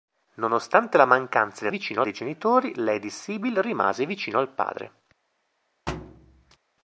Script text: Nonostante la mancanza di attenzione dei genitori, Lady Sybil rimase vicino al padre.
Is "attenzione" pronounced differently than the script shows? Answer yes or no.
yes